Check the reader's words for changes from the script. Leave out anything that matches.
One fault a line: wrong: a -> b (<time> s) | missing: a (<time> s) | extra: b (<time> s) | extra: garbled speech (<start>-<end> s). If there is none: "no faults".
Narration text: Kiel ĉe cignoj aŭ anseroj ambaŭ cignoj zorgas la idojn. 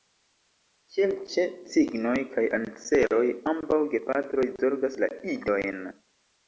wrong: aŭ -> kaj (2.3 s)
wrong: cignoj -> gepatroj (4.0 s)